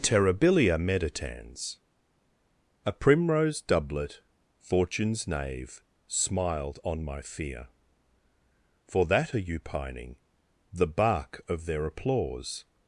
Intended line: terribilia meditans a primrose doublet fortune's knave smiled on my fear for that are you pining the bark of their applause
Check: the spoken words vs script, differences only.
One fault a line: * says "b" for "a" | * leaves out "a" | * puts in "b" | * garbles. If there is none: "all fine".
all fine